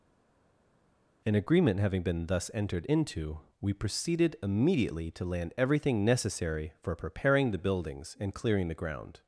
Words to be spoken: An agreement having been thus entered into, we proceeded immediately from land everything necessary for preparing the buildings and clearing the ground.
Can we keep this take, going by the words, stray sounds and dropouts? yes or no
no